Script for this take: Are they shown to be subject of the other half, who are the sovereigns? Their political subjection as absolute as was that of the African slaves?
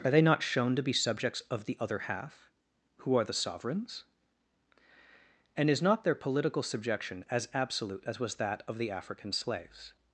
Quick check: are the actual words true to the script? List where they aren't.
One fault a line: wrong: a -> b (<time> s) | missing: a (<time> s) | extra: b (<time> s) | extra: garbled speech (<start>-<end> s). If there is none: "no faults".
extra: not (0.2 s)
wrong: subject -> subjects (0.9 s)
extra: And is not (5.5 s)